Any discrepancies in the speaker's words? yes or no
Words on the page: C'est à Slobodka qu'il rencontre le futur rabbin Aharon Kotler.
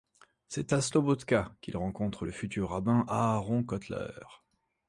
no